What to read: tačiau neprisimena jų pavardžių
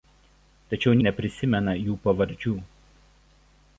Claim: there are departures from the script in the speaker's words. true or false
false